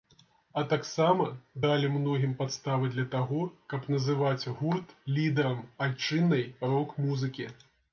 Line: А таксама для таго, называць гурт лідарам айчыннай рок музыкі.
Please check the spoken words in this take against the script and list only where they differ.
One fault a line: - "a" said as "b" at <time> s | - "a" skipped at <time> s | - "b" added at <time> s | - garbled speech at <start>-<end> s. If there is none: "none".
- "далі многім падставы" added at 1.6 s
- "каб" added at 3.7 s